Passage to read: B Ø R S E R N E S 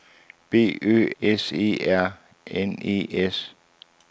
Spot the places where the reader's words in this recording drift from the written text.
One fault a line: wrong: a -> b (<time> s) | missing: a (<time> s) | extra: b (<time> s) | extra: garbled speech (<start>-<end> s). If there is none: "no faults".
missing: R (1.1 s)